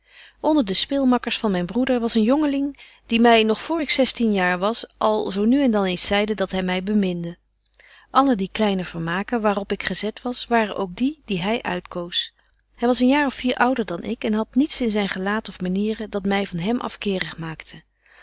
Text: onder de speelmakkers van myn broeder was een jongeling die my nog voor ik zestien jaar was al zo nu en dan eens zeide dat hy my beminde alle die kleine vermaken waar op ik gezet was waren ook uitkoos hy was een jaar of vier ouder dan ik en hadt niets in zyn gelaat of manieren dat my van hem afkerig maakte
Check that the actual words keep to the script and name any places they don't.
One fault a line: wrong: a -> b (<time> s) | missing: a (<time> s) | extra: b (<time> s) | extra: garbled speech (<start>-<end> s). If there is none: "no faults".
extra: die die hy (10.9 s)